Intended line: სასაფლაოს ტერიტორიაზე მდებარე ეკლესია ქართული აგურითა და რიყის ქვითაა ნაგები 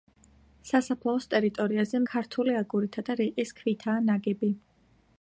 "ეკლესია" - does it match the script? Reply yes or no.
no